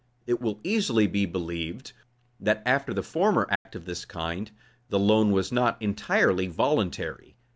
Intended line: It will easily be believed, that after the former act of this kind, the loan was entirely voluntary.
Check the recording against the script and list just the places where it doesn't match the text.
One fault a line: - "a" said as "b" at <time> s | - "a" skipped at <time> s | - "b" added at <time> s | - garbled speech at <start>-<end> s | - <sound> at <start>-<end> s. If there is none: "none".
- dropout at 3.6-3.7 s
- "not" added at 5.5 s